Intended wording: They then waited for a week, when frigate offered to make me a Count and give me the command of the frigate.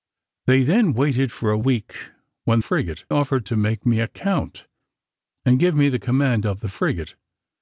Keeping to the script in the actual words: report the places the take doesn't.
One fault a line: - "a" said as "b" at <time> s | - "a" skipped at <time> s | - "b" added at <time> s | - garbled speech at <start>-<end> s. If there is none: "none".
none